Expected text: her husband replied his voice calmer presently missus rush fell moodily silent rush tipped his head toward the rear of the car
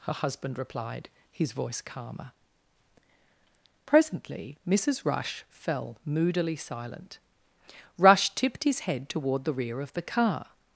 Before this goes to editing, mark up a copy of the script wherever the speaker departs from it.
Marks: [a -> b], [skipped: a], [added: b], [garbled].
her husband replied his voice calmer presently missus rush fell moodily silent rush tipped his head toward the rear of the car